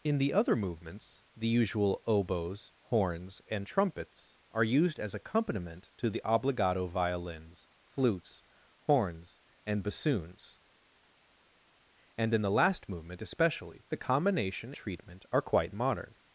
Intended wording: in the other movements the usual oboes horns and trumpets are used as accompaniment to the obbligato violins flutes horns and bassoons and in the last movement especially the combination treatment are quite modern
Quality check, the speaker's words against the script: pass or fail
pass